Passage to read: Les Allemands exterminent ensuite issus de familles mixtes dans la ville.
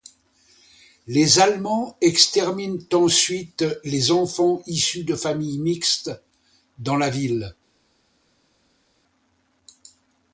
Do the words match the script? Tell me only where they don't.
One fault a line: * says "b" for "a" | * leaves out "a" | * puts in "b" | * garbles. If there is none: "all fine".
* puts in "les enfants"